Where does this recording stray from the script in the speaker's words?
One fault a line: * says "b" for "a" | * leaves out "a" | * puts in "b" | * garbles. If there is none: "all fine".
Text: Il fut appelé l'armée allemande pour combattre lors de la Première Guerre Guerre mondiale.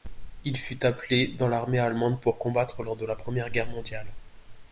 * puts in "dans"
* leaves out "Guerre"